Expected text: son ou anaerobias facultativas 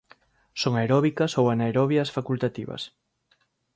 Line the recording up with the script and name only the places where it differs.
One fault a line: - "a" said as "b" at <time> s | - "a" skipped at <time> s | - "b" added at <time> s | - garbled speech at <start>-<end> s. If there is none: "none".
- "aeróbicas" added at 0.8 s